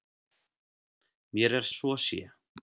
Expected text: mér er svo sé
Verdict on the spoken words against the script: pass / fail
pass